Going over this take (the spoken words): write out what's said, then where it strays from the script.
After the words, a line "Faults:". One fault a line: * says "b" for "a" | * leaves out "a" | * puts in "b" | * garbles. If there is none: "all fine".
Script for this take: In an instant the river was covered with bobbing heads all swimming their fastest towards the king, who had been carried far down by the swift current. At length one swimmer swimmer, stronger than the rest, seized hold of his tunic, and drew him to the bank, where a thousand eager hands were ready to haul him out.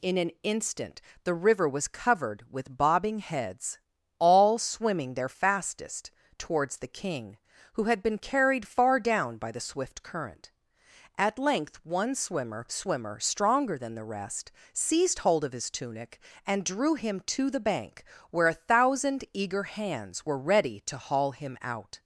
In an instant the river was covered with bobbing heads all swimming their fastest towards the king, who had been carried far down by the swift current. At length one swimmer swimmer, stronger than the rest, seized hold of his tunic, and drew him to the bank, where a thousand eager hands were ready to haul him out.
Faults:
all fine